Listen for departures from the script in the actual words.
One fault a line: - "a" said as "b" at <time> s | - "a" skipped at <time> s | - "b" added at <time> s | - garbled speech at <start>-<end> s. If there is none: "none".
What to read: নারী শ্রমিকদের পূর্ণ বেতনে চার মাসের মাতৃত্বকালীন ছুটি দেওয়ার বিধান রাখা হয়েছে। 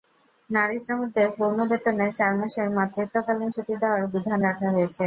none